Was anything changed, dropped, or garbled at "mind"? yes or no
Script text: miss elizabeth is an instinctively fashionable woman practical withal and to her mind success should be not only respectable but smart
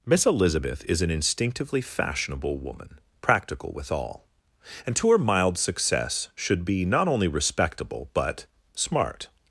yes